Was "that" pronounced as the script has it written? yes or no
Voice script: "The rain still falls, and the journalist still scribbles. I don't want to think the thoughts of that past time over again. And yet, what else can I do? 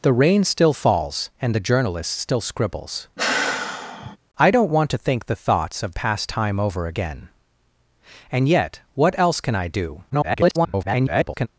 no